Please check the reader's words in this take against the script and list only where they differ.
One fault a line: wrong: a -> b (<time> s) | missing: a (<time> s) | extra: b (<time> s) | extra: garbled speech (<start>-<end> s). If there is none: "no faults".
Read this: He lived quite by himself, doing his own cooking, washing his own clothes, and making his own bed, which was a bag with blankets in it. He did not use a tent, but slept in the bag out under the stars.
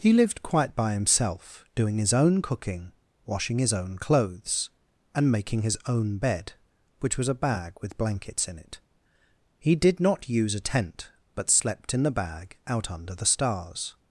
no faults